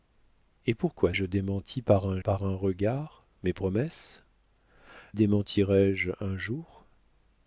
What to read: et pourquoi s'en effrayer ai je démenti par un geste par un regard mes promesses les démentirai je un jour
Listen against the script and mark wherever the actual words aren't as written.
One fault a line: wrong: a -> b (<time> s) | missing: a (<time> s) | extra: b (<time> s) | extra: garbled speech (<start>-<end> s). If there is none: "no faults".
missing: s'en effrayer ai (1.1 s)
missing: geste (2.2 s)
missing: les (4.2 s)